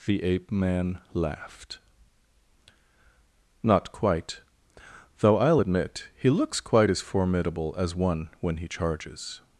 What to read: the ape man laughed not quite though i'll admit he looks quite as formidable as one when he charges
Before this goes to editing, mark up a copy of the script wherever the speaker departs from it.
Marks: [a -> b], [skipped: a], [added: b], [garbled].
the ape man laughed not quite though i'll admit he looks quite as formidable as one when he charges